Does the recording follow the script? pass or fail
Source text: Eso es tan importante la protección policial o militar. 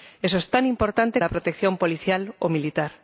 pass